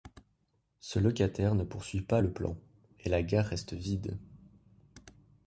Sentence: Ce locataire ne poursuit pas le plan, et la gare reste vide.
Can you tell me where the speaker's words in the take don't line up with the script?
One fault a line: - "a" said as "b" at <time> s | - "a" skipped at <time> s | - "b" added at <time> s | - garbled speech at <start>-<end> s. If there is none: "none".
none